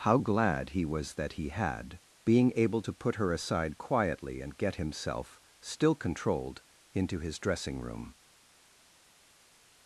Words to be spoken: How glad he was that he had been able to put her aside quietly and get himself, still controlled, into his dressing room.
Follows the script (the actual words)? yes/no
no